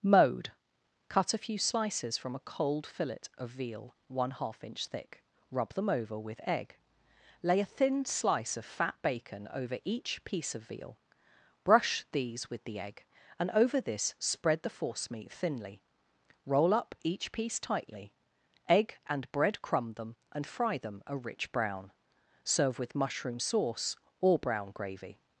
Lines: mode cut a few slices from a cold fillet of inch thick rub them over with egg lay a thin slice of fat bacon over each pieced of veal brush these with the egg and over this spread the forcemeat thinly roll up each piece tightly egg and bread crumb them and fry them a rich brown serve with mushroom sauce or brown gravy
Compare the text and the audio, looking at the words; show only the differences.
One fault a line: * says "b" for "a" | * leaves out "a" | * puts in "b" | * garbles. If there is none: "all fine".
* puts in "veal one half"
* says "piece" for "pieced"